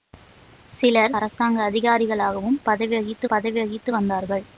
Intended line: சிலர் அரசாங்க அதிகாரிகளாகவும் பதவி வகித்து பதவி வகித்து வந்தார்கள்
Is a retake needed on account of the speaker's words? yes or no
no